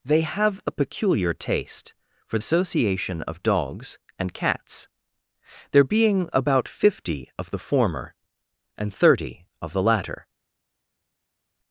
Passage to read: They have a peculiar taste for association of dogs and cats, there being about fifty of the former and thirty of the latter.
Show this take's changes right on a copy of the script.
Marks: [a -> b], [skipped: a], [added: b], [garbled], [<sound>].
They have a peculiar taste for association of dogs and cats, there being about fifty of the former and thirty of the latter.